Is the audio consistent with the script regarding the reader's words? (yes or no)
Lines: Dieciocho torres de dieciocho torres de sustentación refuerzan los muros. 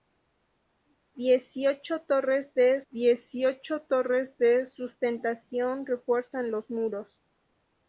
yes